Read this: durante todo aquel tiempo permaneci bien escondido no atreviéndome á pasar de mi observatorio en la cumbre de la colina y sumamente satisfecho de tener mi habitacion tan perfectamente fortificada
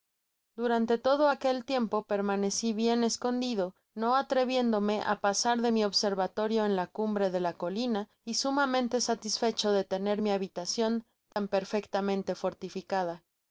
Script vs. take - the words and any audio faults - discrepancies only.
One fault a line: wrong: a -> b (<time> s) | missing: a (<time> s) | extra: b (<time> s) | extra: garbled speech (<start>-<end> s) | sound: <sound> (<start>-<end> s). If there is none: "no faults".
sound: dropout (11.3-11.4 s)